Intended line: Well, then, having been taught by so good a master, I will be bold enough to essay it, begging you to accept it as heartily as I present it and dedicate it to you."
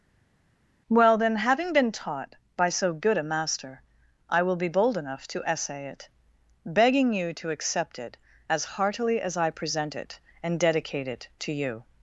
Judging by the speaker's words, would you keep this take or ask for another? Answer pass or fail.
pass